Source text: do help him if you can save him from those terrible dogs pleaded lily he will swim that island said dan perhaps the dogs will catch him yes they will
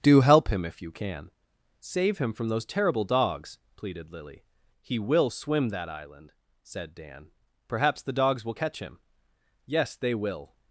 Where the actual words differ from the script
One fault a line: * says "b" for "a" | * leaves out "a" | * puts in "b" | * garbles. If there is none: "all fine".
all fine